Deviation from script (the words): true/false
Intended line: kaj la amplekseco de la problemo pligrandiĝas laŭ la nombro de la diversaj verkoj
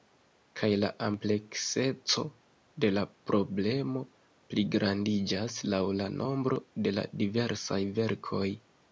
false